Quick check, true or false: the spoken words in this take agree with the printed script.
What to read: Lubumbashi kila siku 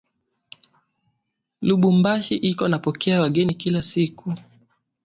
false